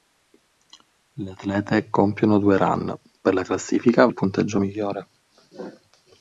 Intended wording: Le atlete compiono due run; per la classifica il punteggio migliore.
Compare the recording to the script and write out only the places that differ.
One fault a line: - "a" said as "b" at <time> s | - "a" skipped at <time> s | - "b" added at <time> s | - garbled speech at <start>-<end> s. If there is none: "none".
none